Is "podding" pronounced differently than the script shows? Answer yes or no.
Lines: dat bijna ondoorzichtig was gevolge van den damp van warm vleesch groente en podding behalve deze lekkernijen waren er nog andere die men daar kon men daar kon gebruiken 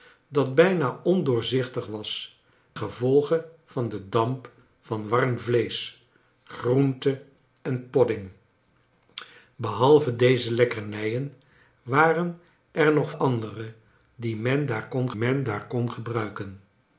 no